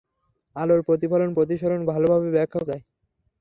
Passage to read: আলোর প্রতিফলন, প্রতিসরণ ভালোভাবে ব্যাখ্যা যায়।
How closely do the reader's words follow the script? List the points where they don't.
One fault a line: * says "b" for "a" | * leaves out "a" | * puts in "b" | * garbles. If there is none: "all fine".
all fine